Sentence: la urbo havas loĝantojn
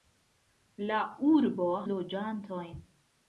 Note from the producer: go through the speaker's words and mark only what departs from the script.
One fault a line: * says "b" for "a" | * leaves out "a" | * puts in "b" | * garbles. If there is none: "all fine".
* leaves out "havas"